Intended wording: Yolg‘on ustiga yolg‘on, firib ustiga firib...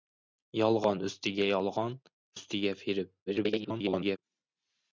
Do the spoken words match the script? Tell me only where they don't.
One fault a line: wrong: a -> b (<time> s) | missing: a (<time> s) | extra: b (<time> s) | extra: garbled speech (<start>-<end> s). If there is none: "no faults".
missing: firib (2.0 s)
extra: garbled speech (3.3-4.2 s)